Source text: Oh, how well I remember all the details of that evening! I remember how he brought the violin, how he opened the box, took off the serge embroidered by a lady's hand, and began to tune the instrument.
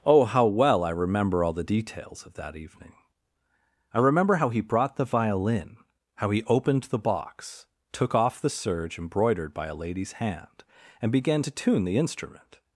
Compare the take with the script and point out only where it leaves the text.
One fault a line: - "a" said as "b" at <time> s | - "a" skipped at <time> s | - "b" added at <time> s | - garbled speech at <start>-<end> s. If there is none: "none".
none